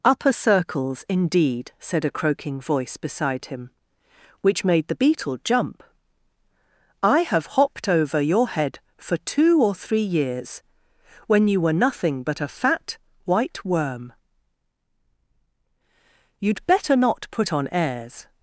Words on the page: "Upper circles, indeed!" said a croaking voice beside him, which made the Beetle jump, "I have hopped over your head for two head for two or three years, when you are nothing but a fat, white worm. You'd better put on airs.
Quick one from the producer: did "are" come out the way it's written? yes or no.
no